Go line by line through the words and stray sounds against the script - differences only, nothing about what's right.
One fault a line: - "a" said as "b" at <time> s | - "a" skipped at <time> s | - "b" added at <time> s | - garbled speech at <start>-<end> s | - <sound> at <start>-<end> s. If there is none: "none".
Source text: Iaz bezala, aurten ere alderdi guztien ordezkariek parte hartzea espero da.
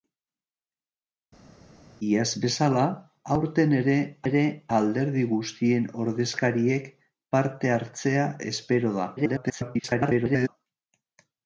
- "ere" added at 4.2 s
- garbled speech at 9.2-10.5 s